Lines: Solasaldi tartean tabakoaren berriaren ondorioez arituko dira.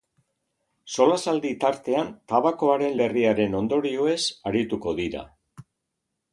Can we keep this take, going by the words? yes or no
yes